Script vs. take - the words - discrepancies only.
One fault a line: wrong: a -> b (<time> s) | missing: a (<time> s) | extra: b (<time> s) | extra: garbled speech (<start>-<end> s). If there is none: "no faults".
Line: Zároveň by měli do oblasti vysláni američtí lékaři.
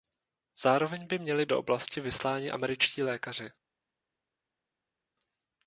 no faults